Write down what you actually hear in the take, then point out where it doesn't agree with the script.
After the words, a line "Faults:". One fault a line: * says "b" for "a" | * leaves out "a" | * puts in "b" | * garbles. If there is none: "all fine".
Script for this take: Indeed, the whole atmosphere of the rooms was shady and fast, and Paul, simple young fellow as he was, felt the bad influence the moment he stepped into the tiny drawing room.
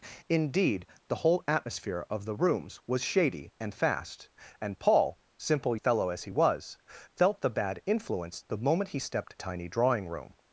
Indeed, the whole atmosphere of the rooms was shady and fast, and Paul, simple fellow as he was, felt the bad influence the moment he stepped tiny drawing room.
Faults:
* leaves out "young"
* leaves out "into the"